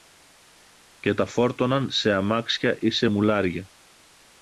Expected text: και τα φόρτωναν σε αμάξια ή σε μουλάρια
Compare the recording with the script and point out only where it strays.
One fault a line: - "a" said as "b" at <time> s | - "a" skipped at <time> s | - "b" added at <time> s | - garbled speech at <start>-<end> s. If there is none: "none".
none